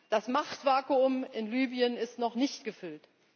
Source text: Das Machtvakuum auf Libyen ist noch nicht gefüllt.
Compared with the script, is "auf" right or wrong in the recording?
wrong